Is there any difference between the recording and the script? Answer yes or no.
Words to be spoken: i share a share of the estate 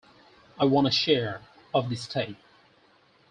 yes